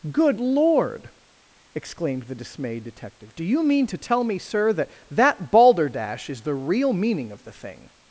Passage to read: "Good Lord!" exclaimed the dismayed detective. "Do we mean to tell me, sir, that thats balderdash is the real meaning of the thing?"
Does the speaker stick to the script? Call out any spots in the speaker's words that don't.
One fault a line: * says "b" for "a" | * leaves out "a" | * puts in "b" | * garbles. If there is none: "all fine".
* says "you" for "we"
* says "that" for "thats"